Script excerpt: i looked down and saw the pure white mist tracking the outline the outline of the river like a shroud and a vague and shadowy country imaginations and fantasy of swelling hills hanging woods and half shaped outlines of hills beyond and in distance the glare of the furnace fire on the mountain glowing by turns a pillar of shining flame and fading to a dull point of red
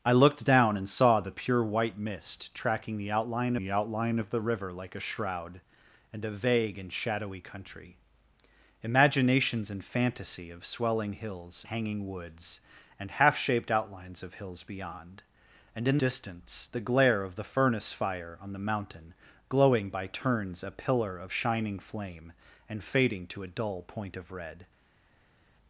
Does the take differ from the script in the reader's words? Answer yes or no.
no